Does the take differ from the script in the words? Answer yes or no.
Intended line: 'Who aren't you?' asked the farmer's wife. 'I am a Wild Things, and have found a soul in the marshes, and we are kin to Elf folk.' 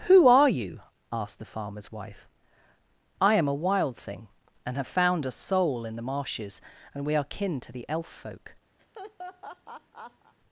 yes